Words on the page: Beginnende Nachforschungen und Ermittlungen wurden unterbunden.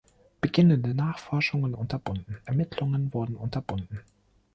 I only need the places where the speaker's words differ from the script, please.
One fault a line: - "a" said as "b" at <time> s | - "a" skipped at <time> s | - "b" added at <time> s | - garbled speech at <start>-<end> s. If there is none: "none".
- "und" said as "unterbunden" at 1.7 s